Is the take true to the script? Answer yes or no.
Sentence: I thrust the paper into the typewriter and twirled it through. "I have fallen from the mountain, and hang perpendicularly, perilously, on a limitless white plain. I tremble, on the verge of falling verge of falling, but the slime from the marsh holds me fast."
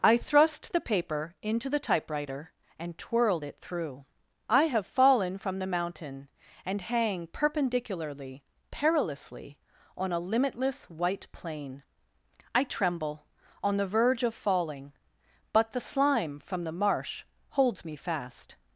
no